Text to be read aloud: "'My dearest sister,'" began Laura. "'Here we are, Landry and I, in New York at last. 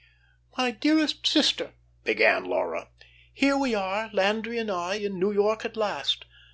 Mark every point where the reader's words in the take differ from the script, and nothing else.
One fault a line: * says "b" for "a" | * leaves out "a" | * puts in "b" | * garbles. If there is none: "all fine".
all fine